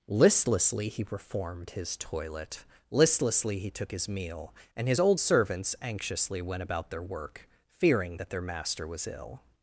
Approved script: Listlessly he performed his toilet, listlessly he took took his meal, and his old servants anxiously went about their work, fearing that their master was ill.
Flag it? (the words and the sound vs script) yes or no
yes